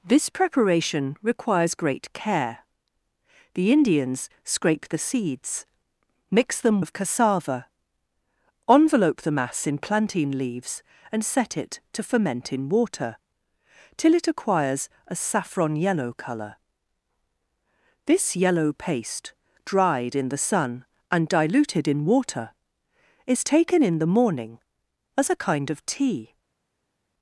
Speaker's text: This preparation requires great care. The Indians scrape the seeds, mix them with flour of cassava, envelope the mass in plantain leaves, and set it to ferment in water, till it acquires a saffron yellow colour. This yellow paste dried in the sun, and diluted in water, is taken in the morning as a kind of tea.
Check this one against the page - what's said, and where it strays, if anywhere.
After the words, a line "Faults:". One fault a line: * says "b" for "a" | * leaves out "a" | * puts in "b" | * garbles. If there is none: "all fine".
This preparation requires great care. The Indians scrape the seeds, mix them of cassava, envelope the mass in plantain leaves, and set it to ferment in water, till it acquires a saffron yellow colour. This yellow paste dried in the sun, and diluted in water, is taken in the morning as a kind of tea.
Faults:
* leaves out "with flour"